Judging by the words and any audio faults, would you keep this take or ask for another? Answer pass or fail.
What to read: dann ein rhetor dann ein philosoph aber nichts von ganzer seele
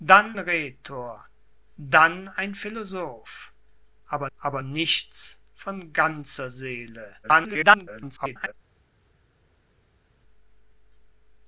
fail